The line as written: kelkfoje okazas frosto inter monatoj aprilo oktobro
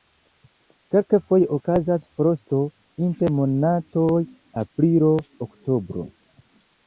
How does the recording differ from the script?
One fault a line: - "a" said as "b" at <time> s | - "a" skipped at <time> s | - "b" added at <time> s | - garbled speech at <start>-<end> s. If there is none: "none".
none